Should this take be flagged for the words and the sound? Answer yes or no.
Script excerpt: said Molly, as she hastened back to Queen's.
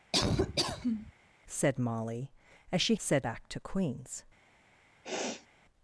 yes